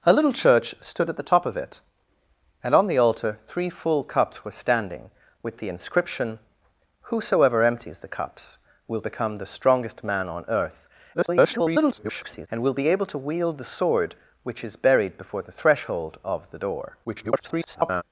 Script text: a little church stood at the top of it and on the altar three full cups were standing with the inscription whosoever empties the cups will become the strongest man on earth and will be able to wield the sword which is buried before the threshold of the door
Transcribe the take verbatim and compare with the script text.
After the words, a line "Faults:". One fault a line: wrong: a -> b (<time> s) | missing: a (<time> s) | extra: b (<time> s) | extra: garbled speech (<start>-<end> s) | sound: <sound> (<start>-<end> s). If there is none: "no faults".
a little church stood at the top of it and on the altar three full cups were standing with the inscription whosoever empties the cups will become the strongest man on earth [garbled] and will be able to wield the sword which is buried before the threshold of the door [garbled]
Faults:
extra: garbled speech (11.1-12.5 s)
extra: garbled speech (17.0-18.0 s)